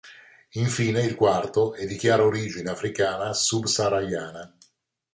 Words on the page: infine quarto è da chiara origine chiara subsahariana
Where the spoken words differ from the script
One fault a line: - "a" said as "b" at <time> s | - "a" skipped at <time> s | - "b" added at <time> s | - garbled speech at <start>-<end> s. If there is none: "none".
- "il" added at 1.0 s
- "da" said as "di" at 1.8 s
- "chiara" said as "africana" at 2.7 s